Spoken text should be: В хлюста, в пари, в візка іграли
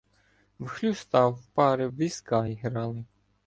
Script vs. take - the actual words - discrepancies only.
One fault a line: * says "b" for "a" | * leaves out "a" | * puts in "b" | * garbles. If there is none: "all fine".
all fine